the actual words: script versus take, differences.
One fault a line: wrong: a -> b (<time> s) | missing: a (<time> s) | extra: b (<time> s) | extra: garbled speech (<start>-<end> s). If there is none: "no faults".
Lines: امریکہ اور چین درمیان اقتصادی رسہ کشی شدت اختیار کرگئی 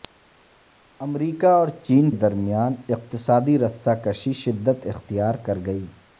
no faults